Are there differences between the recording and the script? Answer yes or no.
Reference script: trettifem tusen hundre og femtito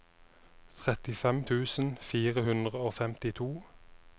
yes